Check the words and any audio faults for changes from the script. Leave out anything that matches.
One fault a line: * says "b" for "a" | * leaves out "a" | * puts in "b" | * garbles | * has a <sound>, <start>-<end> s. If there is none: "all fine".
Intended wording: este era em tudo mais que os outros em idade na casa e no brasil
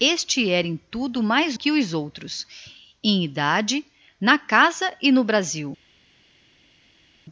all fine